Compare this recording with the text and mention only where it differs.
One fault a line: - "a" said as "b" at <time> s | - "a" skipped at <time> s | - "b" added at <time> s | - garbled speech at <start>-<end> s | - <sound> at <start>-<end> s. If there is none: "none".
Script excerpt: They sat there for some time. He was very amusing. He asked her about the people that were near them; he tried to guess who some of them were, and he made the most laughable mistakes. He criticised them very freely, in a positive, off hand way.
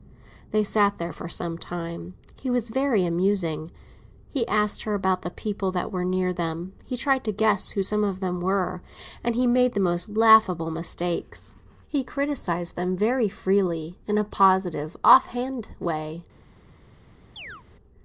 - chirp at 17.4-17.6 s